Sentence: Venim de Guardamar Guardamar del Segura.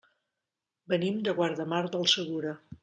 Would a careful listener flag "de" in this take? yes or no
no